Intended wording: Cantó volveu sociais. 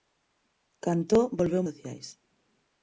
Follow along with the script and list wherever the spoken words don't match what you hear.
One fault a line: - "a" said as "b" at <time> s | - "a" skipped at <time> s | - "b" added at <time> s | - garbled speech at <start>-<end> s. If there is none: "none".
none